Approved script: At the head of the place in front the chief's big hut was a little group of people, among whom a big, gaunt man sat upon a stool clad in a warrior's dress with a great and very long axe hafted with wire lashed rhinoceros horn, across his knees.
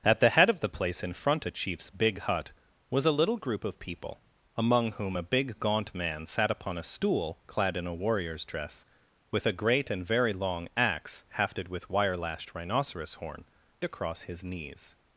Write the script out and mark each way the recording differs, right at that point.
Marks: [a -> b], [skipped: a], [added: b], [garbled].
At the head of the place in front the chief's big hut was a little group of people, among whom a big, gaunt man sat upon a stool clad in a warrior's dress with a great and very long axe hafted with wire lashed rhinoceros horn, across his knees.